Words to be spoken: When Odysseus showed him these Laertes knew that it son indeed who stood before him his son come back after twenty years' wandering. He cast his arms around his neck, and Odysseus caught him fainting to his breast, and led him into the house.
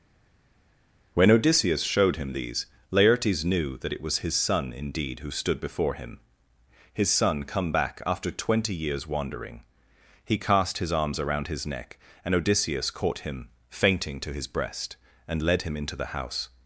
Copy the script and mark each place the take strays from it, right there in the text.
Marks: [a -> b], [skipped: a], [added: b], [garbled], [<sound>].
When Odysseus showed him these Laertes knew that it [added: was his] son indeed who stood before him his son come back after twenty years' wandering. He cast his arms around his neck, and Odysseus caught him fainting to his breast, and led him into the house.